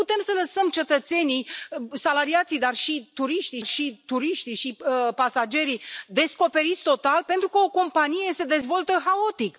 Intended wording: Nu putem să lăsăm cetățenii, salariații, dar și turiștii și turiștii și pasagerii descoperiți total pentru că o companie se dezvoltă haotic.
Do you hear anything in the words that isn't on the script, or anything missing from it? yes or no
no